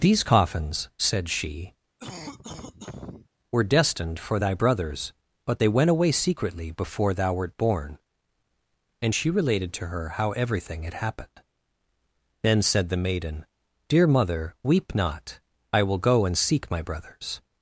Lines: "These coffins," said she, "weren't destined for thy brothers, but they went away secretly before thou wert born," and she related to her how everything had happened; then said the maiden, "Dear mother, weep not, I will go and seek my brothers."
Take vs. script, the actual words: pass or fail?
fail